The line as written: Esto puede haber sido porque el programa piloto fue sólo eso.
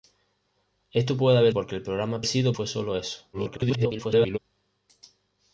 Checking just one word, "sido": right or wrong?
wrong